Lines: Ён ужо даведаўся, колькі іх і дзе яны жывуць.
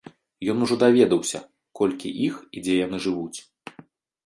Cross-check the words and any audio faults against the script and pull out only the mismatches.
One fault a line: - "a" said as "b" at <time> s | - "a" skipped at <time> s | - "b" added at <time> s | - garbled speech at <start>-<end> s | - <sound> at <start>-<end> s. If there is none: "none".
none